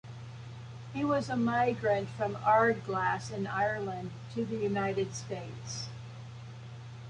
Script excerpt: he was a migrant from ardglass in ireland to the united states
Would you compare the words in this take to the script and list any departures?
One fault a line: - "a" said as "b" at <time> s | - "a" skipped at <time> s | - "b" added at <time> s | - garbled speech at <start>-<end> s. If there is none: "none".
none